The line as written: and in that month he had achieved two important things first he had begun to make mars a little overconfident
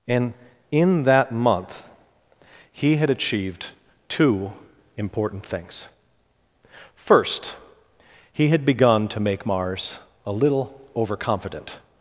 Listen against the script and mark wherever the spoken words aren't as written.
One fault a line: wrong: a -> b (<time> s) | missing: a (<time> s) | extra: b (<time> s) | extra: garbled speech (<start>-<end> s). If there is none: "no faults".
no faults